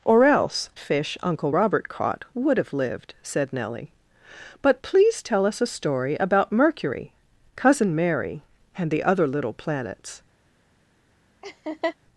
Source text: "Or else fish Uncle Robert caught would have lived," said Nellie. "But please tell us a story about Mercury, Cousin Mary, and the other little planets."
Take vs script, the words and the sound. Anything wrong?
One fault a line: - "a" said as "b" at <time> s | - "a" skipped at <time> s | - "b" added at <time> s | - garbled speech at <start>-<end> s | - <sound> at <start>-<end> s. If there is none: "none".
- laugh at 11.4-12.0 s